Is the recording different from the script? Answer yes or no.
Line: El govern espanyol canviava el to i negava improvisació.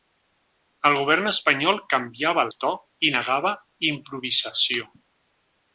no